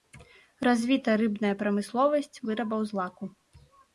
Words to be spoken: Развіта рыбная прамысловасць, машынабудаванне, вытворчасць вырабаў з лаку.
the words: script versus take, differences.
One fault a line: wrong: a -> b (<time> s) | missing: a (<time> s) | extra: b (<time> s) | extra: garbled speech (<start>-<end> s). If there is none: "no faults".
missing: машынабудаванне вытворчасць (2.4 s)